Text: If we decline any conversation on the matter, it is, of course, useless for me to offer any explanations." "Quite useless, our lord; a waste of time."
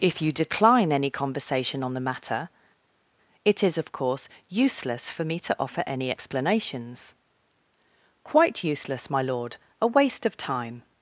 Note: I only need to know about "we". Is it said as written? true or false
false